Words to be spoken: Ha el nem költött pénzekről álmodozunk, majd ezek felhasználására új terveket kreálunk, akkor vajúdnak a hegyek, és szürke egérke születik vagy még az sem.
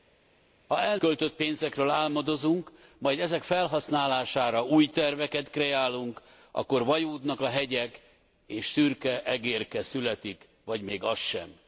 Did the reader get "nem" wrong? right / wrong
wrong